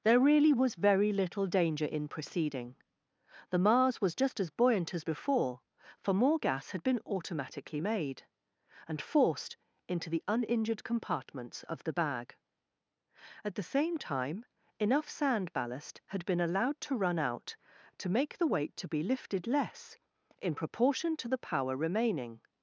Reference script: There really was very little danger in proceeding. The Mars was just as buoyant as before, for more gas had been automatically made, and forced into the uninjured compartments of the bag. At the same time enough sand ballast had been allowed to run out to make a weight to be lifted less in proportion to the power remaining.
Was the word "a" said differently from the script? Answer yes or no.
yes